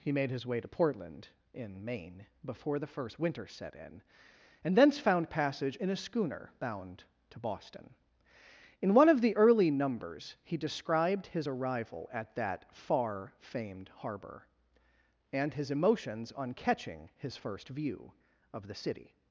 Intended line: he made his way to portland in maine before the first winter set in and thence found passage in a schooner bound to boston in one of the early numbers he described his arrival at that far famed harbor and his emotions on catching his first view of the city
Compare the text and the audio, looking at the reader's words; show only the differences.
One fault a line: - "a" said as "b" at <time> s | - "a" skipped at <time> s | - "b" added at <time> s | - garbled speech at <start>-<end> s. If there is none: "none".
none